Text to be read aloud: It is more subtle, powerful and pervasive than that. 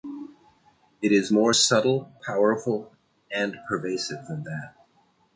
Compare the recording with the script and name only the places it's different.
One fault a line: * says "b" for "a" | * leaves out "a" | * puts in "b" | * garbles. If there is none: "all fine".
all fine